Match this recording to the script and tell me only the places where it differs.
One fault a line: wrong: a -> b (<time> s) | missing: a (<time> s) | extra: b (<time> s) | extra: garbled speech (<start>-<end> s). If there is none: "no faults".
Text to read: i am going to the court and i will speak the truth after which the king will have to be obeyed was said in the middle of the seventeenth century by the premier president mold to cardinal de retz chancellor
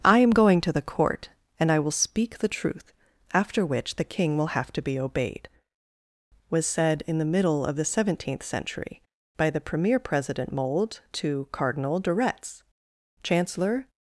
no faults